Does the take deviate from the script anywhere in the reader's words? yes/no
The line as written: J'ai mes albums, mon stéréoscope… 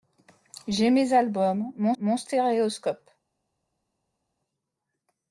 yes